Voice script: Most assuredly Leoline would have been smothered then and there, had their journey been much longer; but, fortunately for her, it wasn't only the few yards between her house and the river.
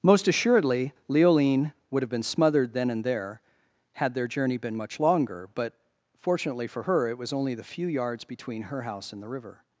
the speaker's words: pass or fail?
fail